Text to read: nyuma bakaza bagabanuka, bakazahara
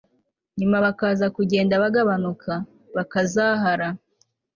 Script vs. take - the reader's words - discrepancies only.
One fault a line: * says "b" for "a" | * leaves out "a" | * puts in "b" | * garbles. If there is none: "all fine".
* puts in "kugenda"